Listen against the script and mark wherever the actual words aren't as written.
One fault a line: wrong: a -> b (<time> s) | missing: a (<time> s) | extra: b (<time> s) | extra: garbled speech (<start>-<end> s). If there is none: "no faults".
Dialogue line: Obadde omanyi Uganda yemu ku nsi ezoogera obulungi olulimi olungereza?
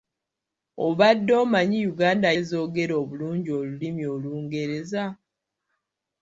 missing: yemu ku nsi (2.3 s)